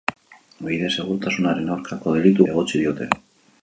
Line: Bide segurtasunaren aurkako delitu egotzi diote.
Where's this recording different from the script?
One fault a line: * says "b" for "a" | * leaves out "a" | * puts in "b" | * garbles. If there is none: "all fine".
all fine